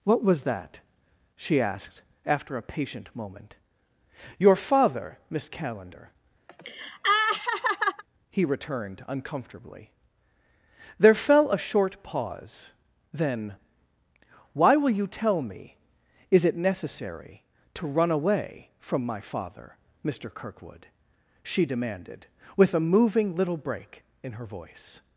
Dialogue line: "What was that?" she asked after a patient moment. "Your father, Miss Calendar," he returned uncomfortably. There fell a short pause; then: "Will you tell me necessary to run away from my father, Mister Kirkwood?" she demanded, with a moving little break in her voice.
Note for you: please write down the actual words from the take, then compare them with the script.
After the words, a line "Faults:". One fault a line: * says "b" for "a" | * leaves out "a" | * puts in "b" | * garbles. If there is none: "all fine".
"What was that?" she asked after a patient moment. "Your father, Miss Calendar," he returned uncomfortably. There fell a short pause; then: "Why will you tell me is it necessary to run away from my father, Mister Kirkwood?" she demanded, with a moving little break in her voice.
Faults:
* puts in "Why"
* puts in "is it"